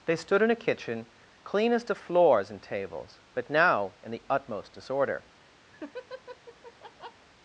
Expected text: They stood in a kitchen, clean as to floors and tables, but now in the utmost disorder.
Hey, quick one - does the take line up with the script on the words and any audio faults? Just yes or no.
no